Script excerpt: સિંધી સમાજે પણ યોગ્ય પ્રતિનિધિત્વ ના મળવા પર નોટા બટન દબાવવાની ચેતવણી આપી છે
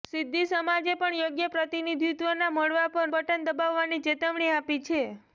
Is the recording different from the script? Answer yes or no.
yes